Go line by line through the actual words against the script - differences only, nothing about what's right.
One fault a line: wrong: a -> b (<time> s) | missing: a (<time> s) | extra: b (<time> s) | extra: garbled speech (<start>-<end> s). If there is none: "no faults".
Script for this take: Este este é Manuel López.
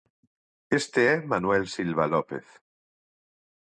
missing: este (1.0 s)
extra: Silva (1.8 s)